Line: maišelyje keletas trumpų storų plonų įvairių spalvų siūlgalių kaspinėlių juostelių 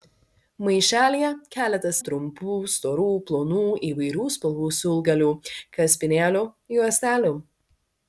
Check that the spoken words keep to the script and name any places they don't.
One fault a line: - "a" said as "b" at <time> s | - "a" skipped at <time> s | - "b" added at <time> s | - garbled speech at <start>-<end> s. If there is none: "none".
none